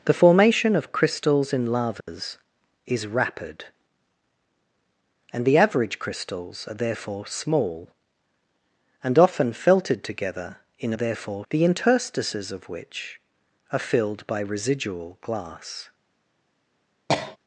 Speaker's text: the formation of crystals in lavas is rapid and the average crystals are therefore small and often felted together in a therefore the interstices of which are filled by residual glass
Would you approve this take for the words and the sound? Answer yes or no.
no